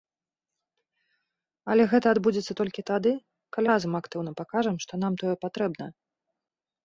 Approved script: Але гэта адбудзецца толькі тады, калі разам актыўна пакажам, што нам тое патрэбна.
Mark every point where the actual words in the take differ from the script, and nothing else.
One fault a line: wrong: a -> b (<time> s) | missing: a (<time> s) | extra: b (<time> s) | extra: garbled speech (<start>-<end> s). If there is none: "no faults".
no faults